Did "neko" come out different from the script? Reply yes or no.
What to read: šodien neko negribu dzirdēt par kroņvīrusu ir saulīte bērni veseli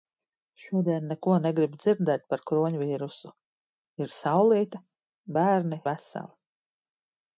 no